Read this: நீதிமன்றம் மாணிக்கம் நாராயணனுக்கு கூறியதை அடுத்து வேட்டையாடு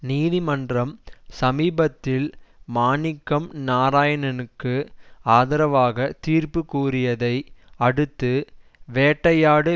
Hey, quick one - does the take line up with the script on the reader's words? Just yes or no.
no